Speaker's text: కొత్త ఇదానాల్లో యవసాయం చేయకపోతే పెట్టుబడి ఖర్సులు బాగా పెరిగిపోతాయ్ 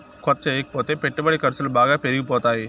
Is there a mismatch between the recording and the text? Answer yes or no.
yes